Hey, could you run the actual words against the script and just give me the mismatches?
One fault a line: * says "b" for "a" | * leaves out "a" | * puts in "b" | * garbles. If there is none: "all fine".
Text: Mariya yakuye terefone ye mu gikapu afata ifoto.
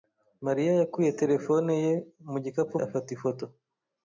all fine